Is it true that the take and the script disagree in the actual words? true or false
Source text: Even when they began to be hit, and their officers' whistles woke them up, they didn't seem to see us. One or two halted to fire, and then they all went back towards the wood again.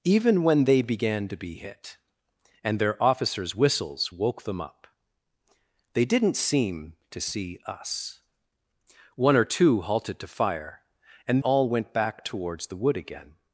true